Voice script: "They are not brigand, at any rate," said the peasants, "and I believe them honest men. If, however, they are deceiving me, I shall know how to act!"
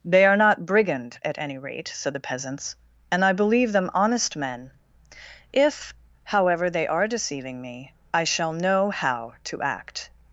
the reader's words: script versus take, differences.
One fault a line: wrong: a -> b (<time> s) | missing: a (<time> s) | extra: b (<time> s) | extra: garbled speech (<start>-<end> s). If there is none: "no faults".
no faults